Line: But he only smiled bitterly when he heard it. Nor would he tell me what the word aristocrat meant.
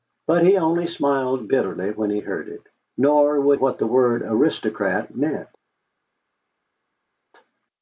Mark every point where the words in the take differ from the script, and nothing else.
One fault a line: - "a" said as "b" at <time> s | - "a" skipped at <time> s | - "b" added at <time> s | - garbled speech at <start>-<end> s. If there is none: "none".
- "he tell me" skipped at 3.6 s